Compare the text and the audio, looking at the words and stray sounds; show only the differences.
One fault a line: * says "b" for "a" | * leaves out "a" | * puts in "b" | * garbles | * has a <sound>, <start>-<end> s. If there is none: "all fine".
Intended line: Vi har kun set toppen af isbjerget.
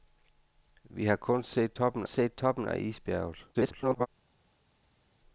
* puts in "set toppen"
* garbles